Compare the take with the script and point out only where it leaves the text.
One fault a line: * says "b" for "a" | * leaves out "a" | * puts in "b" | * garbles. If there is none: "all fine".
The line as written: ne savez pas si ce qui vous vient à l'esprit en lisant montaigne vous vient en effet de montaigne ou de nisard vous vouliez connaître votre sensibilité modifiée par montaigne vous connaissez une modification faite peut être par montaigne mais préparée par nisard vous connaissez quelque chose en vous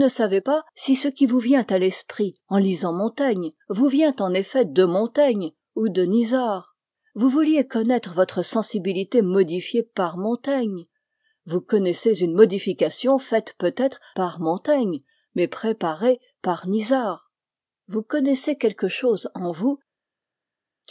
all fine